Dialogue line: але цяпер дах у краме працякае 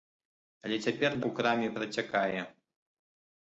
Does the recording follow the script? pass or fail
fail